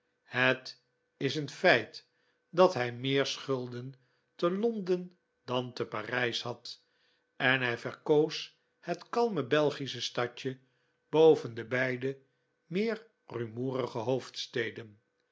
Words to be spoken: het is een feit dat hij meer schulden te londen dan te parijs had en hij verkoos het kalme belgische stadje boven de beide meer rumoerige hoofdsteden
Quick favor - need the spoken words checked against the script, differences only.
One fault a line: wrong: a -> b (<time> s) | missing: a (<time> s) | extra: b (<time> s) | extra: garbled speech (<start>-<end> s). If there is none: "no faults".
no faults